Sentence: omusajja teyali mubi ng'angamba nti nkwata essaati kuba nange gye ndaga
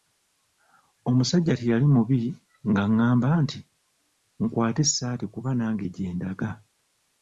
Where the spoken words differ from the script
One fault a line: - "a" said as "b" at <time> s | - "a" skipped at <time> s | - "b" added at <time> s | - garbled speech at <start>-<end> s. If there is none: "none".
none